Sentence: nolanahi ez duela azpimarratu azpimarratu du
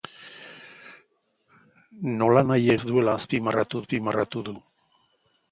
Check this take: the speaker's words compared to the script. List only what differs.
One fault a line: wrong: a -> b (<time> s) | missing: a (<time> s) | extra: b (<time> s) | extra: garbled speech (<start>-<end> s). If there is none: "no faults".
no faults